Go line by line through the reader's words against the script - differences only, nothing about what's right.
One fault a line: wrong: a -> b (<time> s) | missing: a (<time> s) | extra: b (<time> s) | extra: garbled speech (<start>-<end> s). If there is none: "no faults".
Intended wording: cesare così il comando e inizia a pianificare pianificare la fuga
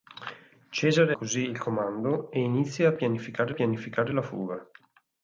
no faults